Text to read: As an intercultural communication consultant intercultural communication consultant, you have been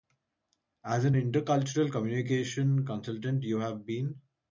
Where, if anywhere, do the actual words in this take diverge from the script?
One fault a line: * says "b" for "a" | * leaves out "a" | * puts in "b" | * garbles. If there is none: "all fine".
* leaves out "intercultural communication consultant"